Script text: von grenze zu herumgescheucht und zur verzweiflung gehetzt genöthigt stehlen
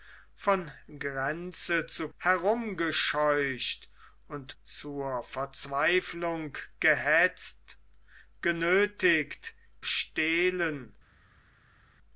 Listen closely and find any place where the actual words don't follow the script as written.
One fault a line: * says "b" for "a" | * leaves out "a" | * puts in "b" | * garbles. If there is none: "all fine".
all fine